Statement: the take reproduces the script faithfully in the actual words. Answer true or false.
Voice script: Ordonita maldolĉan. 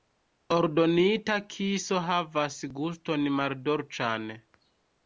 false